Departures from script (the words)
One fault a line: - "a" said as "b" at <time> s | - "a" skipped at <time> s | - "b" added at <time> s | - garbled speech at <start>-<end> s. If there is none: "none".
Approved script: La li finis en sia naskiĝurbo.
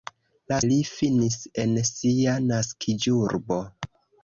none